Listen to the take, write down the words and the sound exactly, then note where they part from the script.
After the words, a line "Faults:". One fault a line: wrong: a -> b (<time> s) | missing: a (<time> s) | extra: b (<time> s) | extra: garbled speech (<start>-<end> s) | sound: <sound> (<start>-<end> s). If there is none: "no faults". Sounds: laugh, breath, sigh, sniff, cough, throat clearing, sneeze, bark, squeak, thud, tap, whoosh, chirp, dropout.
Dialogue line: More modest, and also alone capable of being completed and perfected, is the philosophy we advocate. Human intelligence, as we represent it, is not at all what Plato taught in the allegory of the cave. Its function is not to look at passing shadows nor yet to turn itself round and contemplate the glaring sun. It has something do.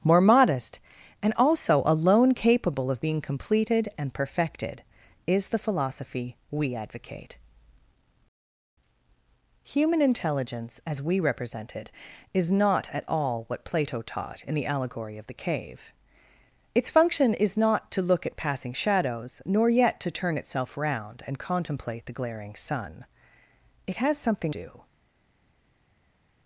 More modest, and also alone capable of being completed and perfected, is the philosophy we advocate. Human intelligence, as we represent it, is not at all what Plato taught in the allegory of the cave. Its function is not to look at passing shadows nor yet to turn itself round and contemplate the glaring sun. It has something do.
Faults:
no faults